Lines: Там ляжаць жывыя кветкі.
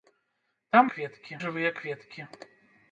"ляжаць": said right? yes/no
no